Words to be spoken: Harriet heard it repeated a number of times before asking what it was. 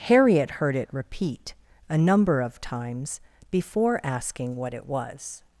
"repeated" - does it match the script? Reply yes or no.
no